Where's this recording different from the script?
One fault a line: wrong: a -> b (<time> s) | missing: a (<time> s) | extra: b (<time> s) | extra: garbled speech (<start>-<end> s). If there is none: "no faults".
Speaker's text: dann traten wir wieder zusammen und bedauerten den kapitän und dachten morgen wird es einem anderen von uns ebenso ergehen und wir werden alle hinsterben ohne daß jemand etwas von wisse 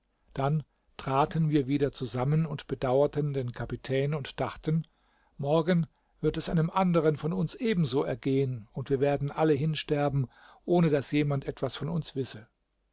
extra: uns (11.9 s)